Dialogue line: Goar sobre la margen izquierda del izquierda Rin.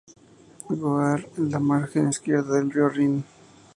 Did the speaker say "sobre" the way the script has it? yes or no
no